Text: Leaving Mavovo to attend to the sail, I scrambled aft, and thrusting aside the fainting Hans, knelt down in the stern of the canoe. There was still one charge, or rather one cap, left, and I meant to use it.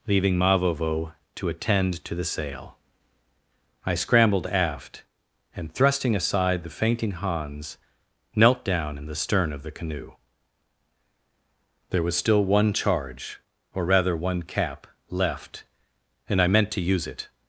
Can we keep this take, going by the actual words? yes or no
yes